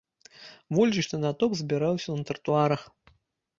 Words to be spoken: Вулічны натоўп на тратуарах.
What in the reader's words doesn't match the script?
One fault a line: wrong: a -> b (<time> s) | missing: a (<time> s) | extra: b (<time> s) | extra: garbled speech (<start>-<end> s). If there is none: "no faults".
extra: збіраўся (1.6 s)